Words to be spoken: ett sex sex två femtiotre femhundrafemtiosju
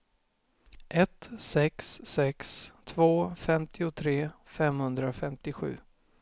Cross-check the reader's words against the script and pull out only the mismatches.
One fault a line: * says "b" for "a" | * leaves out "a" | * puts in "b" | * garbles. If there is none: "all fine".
all fine